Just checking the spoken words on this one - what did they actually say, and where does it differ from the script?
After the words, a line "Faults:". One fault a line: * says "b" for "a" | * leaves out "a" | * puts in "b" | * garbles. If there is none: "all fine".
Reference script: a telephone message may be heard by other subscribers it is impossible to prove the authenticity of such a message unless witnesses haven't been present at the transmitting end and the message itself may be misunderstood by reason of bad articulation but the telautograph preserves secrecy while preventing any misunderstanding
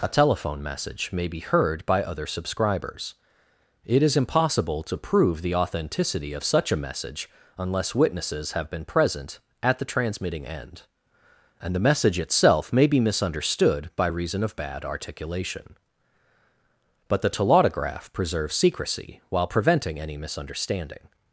a telephone message may be heard by other subscribers it is impossible to prove the authenticity of such a message unless witnesses have been present at the transmitting end and the message itself may be misunderstood by reason of bad articulation but the telautograph preserves secrecy while preventing any misunderstanding
Faults:
* says "have" for "haven't"